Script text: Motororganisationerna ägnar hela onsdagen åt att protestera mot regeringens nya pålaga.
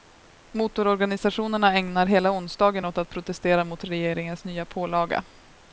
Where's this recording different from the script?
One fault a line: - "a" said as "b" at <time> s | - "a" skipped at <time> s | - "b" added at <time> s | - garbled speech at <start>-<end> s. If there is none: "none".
none